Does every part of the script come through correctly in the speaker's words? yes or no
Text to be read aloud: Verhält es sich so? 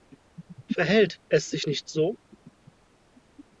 no